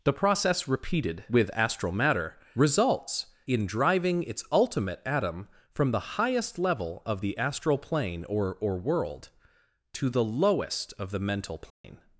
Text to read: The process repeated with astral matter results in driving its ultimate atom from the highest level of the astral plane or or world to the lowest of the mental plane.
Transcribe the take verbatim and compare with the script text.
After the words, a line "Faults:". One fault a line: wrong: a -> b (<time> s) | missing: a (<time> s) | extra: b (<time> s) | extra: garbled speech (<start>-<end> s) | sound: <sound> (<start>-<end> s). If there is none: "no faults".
The process repeated with astral matter results in driving its ultimate atom from the highest level of the astral plane or or world to the lowest of the mental plane.
Faults:
sound: dropout (11.7-11.8 s)